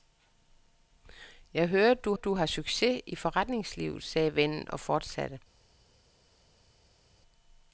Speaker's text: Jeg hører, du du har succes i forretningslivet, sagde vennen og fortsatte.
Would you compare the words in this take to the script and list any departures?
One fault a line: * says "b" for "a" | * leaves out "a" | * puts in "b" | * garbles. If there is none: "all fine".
all fine